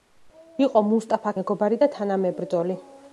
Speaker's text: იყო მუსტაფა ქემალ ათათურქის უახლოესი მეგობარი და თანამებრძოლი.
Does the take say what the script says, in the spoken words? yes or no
no